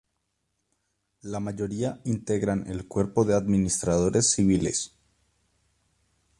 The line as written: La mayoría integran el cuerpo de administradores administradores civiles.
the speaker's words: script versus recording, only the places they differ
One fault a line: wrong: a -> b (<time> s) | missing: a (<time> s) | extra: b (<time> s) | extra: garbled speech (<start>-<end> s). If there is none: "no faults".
missing: administradores (4.3 s)